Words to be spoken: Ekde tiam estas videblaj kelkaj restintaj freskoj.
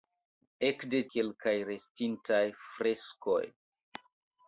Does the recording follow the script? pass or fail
fail